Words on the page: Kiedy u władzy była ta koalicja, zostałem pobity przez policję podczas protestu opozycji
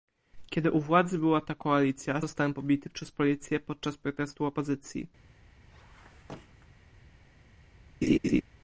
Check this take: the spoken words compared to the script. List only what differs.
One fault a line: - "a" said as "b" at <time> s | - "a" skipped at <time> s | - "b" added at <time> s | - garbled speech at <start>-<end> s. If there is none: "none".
none